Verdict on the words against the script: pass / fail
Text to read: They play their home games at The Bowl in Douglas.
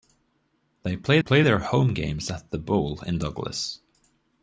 fail